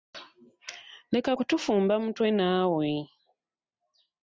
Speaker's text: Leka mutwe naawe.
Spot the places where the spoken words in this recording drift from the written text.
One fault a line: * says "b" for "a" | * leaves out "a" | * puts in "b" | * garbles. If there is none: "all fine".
* puts in "kutufumba"